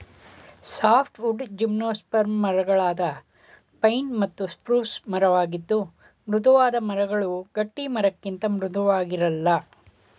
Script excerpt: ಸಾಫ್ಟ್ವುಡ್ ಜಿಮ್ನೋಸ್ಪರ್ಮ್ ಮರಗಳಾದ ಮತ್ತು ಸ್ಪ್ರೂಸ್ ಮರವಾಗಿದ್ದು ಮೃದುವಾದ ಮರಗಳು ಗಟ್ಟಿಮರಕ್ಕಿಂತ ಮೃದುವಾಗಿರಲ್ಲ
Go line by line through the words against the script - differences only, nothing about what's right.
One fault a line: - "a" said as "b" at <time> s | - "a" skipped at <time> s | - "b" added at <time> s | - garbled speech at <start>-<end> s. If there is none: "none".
- "ಪೈನ್" added at 3.8 s